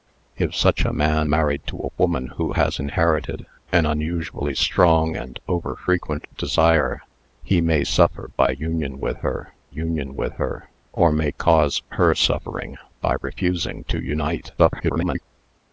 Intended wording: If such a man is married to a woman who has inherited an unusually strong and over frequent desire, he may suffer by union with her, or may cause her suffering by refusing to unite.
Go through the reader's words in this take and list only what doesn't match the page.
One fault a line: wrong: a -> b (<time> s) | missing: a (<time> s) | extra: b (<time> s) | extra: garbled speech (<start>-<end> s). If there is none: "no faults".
missing: is (1.3 s)
extra: union with her (9.7 s)
extra: garbled speech (14.6-15.2 s)